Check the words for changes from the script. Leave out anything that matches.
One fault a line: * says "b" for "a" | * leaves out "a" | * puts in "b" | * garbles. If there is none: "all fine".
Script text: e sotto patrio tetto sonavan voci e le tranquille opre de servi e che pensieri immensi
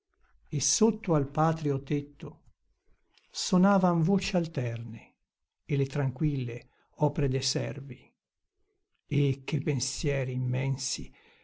* puts in "al"
* puts in "alterne"